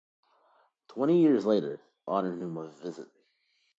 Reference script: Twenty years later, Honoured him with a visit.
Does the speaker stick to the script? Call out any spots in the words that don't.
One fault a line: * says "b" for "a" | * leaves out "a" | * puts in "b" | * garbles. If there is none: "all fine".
all fine